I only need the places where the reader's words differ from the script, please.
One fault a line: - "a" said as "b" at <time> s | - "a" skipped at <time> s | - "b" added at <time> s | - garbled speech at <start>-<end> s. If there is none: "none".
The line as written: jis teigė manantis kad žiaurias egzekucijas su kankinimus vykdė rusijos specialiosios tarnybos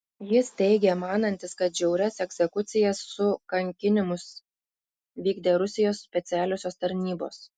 none